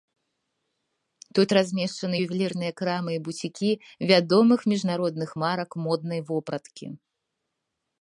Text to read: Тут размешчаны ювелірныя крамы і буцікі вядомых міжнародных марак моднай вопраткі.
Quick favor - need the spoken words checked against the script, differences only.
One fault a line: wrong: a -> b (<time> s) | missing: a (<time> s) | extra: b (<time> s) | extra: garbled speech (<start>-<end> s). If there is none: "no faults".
no faults